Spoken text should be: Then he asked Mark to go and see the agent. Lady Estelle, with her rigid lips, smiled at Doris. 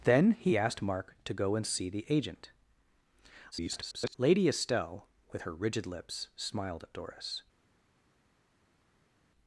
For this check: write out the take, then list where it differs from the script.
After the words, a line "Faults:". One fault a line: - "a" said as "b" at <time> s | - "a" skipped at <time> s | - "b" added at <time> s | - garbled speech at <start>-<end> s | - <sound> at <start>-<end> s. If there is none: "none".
Then he asked Mark to go and see the agent. [garbled] Lady Estelle, with her rigid lips, smiled at Doris.
Faults:
- garbled speech at 3.5-4.1 s